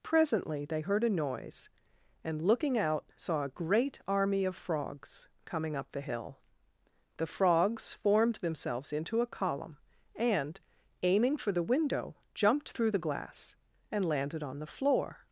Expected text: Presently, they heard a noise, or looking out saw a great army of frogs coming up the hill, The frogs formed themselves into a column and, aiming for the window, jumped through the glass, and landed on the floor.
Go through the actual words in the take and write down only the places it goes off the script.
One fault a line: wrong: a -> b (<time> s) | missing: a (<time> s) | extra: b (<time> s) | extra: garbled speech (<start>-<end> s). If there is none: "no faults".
wrong: or -> and (2.2 s)